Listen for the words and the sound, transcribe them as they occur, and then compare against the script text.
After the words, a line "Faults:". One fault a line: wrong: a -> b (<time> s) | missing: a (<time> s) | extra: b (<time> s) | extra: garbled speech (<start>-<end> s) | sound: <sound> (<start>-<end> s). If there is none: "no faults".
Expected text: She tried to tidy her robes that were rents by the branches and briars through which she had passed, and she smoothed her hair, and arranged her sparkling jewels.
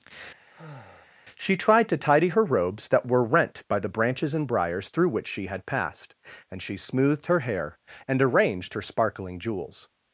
She tried to tidy her robes that were rent by the branches and briars through which she had passed, and she smoothed her hair, and arranged her sparkling jewels.
Faults:
sound: sigh (0.5-1.1 s)
wrong: rents -> rent (3.2 s)